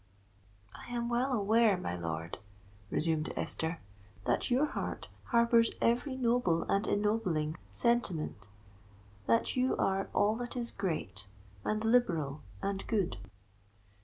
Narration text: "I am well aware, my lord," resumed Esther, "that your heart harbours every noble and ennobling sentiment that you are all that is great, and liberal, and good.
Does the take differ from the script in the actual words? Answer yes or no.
no